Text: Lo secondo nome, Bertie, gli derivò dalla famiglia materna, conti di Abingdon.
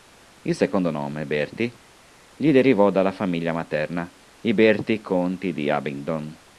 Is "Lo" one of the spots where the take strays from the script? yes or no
yes